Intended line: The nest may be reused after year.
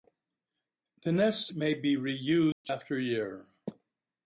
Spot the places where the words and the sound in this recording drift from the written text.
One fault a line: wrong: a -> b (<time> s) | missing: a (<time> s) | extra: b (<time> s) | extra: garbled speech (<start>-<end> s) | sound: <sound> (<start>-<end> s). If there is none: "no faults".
sound: dropout (2.5-2.6 s)